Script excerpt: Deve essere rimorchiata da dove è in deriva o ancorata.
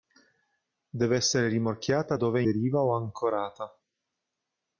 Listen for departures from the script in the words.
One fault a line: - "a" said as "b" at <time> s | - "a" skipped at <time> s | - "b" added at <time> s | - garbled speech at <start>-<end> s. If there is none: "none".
- "da" skipped at 2.2 s
- "in" skipped at 2.4 s